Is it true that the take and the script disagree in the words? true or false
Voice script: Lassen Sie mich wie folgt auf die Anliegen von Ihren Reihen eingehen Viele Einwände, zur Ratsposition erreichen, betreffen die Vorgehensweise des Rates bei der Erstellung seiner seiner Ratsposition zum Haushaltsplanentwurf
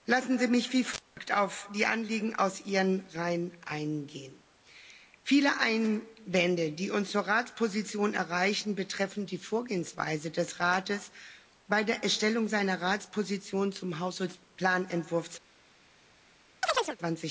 true